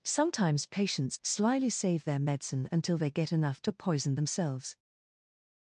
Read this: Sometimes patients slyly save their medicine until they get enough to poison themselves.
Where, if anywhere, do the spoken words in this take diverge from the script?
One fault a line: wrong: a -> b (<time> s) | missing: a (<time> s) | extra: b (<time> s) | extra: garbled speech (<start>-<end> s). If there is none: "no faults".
no faults